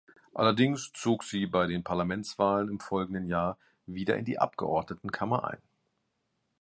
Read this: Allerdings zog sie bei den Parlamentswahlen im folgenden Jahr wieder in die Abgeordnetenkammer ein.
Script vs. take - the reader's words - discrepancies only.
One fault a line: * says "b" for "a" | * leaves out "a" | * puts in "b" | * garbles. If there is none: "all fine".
all fine